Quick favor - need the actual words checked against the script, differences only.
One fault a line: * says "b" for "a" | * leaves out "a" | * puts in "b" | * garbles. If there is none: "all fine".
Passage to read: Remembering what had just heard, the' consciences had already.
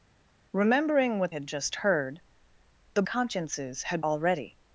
all fine